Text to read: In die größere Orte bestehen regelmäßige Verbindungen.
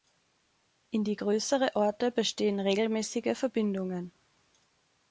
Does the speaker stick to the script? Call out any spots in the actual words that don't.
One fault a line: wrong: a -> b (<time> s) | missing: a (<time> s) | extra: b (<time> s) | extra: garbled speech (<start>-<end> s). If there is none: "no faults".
no faults